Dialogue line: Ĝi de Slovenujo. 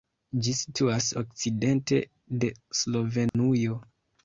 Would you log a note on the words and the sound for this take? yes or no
yes